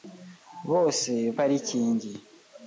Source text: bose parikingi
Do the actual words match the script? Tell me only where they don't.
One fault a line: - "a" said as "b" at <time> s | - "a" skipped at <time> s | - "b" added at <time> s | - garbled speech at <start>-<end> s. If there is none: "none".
none